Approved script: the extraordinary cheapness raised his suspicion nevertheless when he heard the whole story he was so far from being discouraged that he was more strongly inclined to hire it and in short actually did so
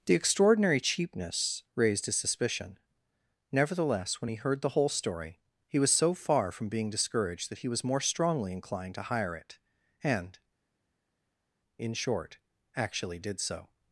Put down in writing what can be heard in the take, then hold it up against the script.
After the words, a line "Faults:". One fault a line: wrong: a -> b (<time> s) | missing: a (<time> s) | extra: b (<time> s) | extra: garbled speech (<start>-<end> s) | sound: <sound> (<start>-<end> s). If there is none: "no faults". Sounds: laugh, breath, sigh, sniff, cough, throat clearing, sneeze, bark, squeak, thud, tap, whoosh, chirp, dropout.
the extraordinary cheapness raised his suspicion nevertheless when he heard the whole story he was so far from being discouraged that he was more strongly inclined to hire it and in short actually did so
Faults:
no faults